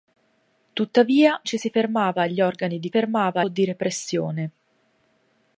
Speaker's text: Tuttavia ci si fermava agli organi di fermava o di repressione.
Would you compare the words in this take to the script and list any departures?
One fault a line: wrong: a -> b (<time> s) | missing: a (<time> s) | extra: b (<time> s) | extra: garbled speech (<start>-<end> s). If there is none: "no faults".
no faults